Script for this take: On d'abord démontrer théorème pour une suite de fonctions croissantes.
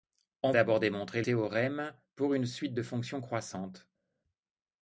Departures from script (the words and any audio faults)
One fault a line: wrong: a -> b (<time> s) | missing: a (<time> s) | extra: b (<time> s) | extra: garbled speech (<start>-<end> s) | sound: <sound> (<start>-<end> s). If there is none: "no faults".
no faults